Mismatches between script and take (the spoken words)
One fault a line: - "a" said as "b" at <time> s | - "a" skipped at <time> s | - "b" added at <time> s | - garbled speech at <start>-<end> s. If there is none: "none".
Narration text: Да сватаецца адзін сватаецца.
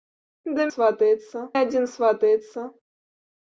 none